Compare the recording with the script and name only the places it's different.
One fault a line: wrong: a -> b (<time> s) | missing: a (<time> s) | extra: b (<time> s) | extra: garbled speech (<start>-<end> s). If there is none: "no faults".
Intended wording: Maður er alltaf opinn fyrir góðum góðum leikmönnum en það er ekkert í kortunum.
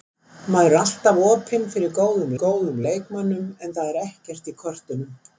no faults